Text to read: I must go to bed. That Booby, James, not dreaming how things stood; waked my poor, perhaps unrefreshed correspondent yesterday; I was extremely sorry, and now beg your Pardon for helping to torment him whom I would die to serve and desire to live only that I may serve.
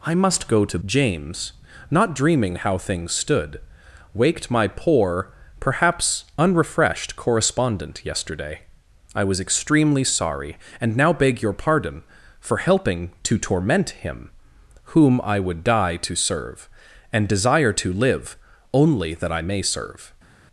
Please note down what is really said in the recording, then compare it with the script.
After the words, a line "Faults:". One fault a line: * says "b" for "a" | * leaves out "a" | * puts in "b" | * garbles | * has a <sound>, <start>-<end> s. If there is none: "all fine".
I must go to James, not dreaming how things stood; waked my poor, perhaps unrefreshed correspondent yesterday; I was extremely sorry, and now beg your Pardon for helping to torment him whom I would die to serve and desire to live only that I may serve.
Faults:
* leaves out "bed That Booby"